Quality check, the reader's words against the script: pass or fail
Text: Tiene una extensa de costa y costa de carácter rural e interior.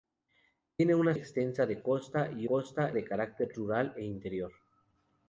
pass